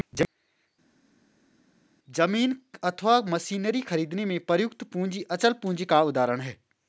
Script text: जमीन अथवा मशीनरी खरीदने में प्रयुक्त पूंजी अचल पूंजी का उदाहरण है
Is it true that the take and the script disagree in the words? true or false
false